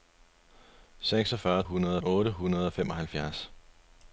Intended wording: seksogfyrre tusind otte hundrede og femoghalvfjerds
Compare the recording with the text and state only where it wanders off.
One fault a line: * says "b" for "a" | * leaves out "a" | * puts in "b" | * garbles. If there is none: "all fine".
* says "hundrede" for "tusind"